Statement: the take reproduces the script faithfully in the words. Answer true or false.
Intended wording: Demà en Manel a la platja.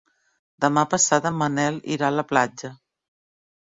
false